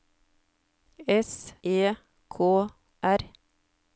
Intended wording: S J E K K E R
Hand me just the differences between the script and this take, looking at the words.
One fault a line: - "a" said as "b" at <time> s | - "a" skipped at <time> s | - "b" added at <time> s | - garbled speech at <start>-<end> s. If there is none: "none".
- "J" skipped at 1.5 s
- "K E" skipped at 2.7 s